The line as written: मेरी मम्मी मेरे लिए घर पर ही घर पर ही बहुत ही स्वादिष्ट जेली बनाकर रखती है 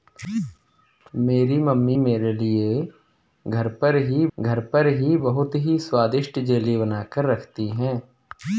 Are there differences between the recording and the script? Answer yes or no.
no